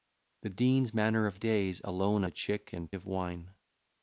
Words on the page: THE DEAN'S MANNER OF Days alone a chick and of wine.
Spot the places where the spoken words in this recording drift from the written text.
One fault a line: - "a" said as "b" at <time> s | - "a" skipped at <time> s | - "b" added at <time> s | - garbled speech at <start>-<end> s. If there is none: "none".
none